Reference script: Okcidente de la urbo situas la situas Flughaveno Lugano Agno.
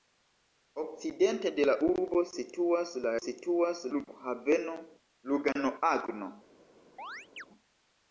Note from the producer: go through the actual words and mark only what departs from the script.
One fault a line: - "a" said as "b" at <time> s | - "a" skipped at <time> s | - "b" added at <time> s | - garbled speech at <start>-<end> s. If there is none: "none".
none